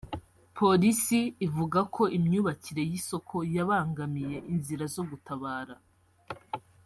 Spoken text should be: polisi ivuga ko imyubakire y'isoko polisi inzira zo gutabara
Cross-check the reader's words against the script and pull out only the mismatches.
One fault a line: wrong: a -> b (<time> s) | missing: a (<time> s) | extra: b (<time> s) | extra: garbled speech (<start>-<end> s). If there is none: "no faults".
wrong: polisi -> yabangamiye (3.5 s)